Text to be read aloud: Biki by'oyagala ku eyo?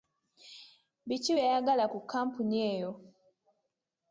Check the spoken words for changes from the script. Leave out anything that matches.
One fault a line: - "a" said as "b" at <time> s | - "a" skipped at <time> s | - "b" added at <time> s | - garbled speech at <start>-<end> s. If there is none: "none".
- "kkampuni" added at 2.0 s